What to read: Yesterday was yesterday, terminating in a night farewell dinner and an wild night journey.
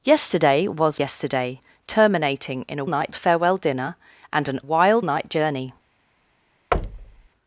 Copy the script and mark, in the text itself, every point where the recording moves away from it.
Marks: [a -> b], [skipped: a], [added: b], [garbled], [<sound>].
Yesterday was yesterday, terminating in a night farewell dinner and an wild night journey. [thud]